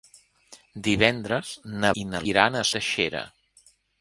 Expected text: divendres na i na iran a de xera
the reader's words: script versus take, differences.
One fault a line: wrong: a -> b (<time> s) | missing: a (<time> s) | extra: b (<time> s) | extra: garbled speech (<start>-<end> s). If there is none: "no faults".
no faults